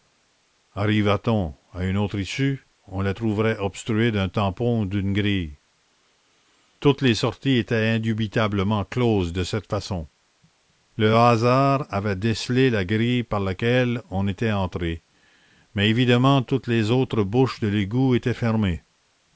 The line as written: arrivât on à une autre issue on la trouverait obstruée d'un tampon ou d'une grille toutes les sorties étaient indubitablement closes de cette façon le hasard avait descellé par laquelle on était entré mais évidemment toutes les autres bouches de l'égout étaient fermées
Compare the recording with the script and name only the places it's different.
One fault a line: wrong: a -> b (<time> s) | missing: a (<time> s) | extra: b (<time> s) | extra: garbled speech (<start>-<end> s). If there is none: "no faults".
extra: la grille (12.7 s)